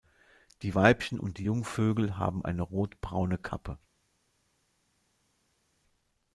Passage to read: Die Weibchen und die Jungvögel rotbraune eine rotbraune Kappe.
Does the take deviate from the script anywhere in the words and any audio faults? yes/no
yes